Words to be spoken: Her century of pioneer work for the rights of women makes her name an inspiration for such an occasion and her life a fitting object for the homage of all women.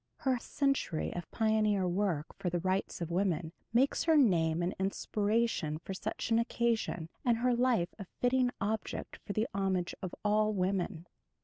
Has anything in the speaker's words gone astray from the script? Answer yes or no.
no